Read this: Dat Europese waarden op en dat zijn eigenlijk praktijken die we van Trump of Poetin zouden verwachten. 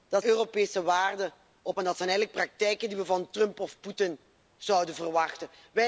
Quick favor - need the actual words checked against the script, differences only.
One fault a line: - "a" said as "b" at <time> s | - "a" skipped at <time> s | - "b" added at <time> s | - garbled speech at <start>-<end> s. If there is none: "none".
none